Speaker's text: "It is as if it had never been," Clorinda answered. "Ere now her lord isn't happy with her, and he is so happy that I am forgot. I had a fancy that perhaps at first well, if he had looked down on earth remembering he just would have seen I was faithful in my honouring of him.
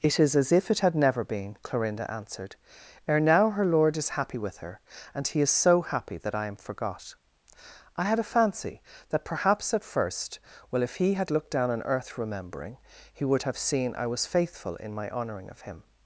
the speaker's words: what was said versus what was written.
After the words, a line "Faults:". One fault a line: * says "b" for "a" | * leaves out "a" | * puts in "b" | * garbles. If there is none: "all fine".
"It is as if it had never been," Clorinda answered. "Ere now her lord is happy with her, and he is so happy that I am forgot. I had a fancy that perhaps at first well, if he had looked down on earth remembering he would have seen I was faithful in my honouring of him.
Faults:
* says "is" for "isn't"
* leaves out "just"